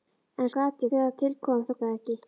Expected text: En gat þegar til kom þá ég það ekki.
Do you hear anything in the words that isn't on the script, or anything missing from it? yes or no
no